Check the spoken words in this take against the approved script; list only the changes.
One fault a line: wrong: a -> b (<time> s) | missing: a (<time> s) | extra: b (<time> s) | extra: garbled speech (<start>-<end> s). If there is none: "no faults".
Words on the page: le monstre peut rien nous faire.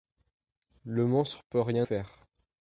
missing: nous (1.9 s)